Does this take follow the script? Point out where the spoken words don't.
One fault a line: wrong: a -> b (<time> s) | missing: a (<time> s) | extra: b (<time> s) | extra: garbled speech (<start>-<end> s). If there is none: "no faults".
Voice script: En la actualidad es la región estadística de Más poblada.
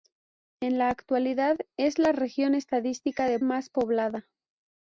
no faults